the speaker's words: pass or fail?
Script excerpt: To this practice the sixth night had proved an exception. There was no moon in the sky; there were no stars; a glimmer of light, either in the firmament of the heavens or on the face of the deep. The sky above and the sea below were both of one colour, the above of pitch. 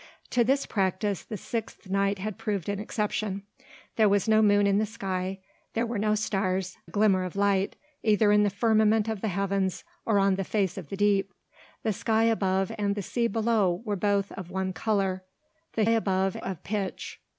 pass